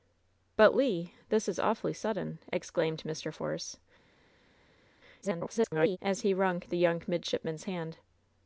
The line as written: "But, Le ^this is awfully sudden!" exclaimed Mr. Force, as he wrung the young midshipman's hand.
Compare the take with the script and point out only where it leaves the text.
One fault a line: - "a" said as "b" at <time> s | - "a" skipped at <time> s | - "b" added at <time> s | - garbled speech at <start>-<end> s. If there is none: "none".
- garbled speech at 5.2-6.0 s